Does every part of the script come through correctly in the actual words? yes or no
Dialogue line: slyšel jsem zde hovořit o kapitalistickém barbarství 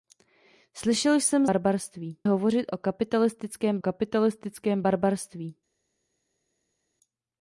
no